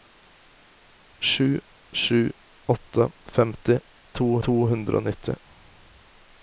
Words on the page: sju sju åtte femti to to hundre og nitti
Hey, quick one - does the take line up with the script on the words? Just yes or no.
yes